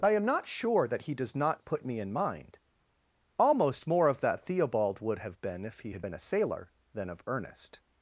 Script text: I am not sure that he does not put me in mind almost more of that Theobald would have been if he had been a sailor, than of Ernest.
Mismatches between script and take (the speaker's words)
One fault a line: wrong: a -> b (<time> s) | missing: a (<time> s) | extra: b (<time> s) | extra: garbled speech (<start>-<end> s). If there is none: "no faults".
no faults